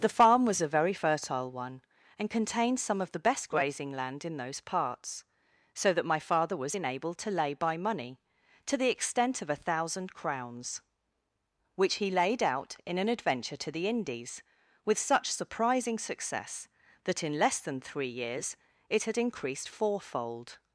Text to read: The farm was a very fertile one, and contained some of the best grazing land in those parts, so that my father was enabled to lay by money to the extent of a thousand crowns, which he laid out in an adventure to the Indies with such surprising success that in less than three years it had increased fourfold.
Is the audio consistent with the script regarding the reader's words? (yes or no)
yes